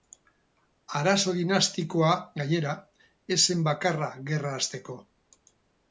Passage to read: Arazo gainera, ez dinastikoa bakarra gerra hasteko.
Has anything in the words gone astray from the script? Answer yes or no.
yes